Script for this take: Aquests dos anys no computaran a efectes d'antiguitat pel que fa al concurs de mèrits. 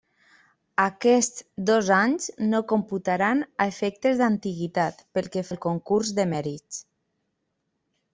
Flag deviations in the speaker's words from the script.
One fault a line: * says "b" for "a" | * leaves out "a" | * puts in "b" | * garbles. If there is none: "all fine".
* leaves out "fa"